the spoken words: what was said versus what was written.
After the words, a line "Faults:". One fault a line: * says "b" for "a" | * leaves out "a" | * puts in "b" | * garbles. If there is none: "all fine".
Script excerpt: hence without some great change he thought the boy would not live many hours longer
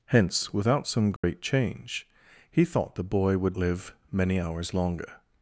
hence without some great change he thought the boy would live many hours longer
Faults:
* leaves out "not"